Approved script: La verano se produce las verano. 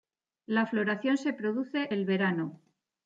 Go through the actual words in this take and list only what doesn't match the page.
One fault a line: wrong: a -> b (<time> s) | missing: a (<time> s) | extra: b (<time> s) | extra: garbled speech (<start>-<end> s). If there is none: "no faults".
wrong: verano -> floración (0.6 s)
wrong: las -> el (1.9 s)